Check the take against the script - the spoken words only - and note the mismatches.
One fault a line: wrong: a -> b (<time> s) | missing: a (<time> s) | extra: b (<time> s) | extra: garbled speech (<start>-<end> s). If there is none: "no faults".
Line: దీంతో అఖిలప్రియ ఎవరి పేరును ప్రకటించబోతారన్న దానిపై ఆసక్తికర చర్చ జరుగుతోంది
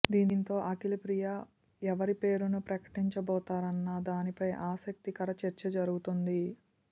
no faults